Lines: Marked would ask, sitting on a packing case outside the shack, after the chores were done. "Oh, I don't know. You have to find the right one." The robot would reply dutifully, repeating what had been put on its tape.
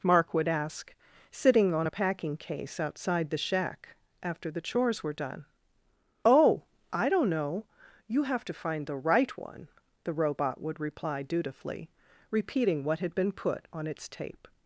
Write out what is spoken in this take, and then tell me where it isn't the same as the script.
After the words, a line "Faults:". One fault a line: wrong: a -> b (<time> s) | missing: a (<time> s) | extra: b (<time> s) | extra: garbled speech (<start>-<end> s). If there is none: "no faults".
Mark would ask, sitting on a packing case outside the shack, after the chores were done. "Oh, I don't know. You have to find the right one." The robot would reply dutifully, repeating what had been put on its tape.
Faults:
wrong: Marked -> Mark (0.0 s)